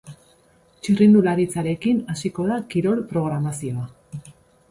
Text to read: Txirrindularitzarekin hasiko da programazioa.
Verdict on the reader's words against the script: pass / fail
fail